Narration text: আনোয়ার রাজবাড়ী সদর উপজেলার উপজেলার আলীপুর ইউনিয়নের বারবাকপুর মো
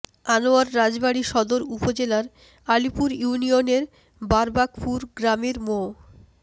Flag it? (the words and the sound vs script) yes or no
yes